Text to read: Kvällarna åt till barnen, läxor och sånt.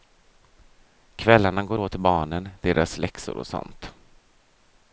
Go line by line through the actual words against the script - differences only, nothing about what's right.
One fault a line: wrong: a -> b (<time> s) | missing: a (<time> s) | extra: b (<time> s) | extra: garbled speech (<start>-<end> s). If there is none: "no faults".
extra: går (1.6 s)
extra: deras (2.6 s)